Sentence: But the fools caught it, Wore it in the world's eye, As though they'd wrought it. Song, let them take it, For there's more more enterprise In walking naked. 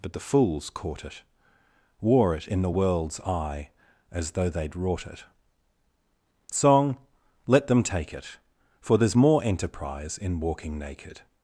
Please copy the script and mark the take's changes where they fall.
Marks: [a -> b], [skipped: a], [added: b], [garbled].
But the fools caught it, Wore it in the world's eye, As though they'd wrought it. Song, let them take it, For there's more [skipped: more] enterprise In walking naked.